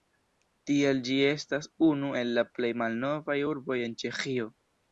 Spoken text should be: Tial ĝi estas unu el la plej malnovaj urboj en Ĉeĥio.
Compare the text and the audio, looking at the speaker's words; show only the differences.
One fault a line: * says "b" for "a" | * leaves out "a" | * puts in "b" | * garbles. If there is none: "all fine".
all fine